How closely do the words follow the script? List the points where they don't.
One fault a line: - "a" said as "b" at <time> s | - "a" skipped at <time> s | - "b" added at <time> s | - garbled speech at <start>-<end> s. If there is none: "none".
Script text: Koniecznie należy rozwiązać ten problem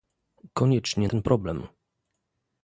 - "należy rozwiązać" skipped at 1.1 s